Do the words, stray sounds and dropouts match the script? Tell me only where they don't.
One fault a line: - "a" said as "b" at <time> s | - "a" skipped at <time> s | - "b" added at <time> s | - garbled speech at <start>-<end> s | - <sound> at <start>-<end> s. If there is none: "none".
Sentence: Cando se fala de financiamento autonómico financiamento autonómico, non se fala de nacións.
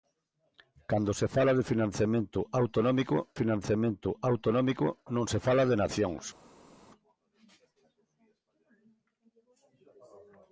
none